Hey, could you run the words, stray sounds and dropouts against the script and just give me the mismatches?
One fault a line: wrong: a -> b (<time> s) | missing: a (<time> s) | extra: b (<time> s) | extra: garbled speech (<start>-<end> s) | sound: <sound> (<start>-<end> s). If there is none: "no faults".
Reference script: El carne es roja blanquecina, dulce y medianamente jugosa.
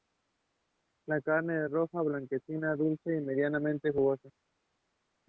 wrong: El -> La (1.1 s)